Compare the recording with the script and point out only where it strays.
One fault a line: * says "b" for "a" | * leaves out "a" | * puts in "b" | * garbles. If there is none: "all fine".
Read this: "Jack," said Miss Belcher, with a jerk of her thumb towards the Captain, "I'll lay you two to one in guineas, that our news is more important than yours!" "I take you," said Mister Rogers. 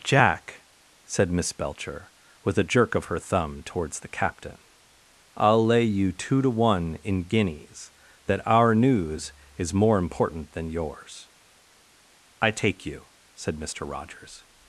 all fine